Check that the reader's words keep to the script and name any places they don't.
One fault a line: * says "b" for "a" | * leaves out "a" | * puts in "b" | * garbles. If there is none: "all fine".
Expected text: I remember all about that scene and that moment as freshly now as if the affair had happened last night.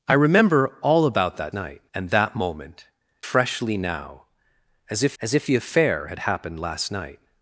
* says "night" for "scene"
* leaves out "as"
* puts in "as if"